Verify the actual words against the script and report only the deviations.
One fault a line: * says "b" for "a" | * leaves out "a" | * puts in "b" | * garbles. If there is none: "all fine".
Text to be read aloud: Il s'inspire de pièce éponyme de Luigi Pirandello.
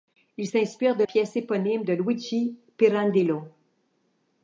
all fine